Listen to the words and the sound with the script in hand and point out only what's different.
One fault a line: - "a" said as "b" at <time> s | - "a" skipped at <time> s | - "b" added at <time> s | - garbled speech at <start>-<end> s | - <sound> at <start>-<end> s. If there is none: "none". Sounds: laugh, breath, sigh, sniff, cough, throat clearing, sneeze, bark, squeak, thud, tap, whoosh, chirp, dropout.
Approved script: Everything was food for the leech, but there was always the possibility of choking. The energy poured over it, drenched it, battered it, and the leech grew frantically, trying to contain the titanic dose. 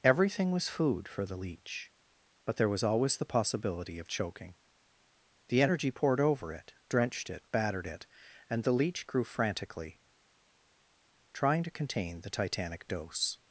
none